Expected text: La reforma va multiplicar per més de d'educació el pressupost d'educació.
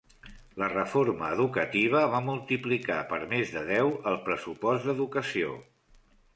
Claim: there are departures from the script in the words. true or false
true